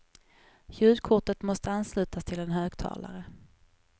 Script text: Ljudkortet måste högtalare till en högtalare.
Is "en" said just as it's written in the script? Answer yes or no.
yes